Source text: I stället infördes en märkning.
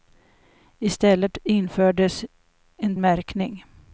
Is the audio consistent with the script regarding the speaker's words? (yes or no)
yes